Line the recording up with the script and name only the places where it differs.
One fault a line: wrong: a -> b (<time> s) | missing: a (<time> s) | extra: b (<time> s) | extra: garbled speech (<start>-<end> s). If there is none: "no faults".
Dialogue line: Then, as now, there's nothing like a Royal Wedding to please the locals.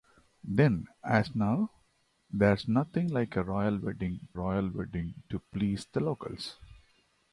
extra: Royal Wedding (4.3 s)